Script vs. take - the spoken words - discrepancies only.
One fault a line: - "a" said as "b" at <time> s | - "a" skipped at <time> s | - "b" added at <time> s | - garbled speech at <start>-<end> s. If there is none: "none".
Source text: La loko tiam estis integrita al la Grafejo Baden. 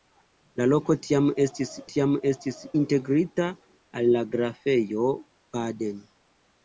- "tiam estis" added at 1.9 s